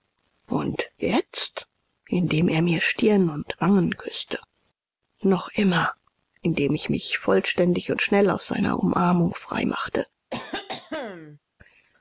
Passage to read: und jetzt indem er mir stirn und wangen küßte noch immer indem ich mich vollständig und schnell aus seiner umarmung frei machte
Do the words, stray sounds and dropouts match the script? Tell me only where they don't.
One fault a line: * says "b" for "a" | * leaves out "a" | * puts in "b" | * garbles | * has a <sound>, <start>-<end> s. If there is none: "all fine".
* has a cough, 10.3-11.4 s